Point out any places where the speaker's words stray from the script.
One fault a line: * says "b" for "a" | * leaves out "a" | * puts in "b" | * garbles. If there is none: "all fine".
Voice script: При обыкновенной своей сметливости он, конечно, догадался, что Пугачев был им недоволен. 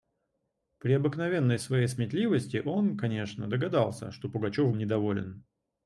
* leaves out "был"